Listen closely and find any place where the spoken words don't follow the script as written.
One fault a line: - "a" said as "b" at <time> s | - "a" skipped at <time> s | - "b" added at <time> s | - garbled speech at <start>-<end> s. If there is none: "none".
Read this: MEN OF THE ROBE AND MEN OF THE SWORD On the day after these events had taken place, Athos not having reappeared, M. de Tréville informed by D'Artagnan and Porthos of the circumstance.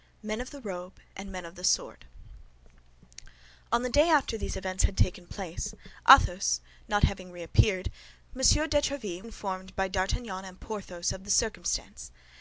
none